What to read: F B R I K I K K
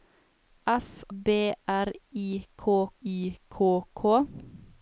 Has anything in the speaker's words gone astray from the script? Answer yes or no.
no